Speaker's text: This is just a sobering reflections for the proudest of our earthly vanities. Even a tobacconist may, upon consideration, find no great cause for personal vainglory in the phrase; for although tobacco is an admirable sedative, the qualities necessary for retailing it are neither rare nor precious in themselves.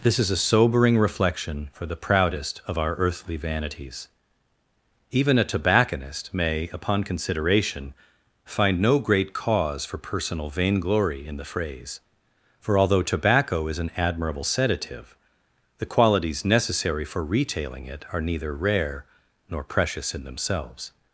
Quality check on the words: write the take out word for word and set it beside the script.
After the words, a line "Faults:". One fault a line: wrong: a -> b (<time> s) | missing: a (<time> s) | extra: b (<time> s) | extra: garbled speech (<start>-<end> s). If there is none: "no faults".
This is a sobering reflection for the proudest of our earthly vanities. Even a tobacconist may, upon consideration, find no great cause for personal vainglory in the phrase; for although tobacco is an admirable sedative, the qualities necessary for retailing it are neither rare nor precious in themselves.
Faults:
missing: just (0.3 s)
wrong: reflections -> reflection (1.0 s)